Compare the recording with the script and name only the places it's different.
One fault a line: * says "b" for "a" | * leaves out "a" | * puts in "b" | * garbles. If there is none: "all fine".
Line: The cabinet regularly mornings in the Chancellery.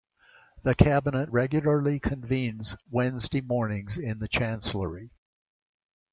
* puts in "convenes Wednesday"